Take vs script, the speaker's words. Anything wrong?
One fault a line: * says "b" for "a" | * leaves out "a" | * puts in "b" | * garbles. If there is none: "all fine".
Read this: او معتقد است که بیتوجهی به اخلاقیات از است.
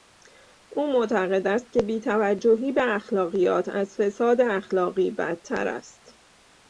* puts in "فساد اخلاقی بدتر"